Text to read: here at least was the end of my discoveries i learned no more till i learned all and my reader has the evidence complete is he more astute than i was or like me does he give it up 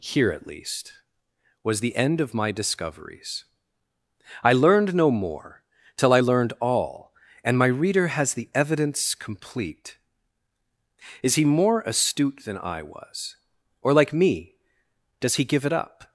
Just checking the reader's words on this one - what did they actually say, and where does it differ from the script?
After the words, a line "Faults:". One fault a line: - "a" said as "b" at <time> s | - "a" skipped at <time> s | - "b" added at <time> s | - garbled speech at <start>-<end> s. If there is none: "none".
here at least was the end of my discoveries i learned no more till i learned all and my reader has the evidence complete is he more astute than i was or like me does he give it up
Faults:
none